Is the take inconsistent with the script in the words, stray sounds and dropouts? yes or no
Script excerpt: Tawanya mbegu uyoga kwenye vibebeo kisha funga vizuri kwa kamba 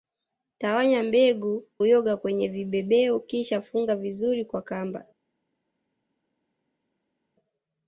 no